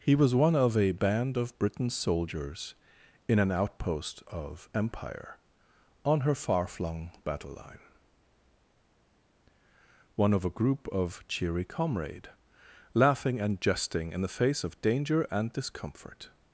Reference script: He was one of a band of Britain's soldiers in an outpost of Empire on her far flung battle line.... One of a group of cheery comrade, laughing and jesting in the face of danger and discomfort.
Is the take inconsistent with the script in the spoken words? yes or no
no